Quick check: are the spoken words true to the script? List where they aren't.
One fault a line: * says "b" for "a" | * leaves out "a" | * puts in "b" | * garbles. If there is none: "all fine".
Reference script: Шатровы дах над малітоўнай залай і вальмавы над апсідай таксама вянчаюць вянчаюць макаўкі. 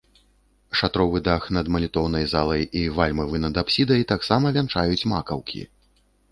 * leaves out "вянчаюць"